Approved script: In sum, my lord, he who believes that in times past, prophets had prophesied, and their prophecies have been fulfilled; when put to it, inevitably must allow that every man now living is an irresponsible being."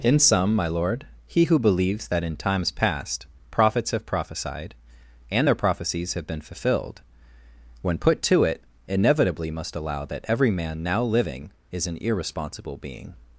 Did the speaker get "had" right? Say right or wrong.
wrong